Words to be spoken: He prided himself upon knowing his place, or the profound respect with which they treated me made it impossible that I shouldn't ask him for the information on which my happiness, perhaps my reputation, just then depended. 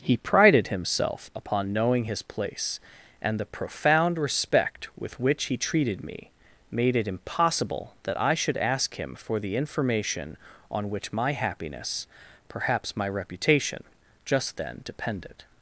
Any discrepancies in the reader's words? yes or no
yes